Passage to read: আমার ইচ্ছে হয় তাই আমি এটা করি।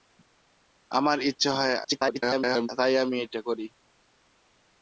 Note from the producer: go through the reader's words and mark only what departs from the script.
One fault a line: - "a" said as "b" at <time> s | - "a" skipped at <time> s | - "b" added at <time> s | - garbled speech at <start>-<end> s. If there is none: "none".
- garbled speech at 1.8-2.7 s